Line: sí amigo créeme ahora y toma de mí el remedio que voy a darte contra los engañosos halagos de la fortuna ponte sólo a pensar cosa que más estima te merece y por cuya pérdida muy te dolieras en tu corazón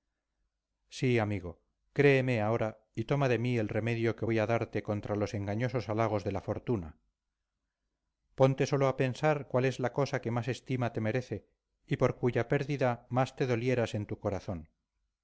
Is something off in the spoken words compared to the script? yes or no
yes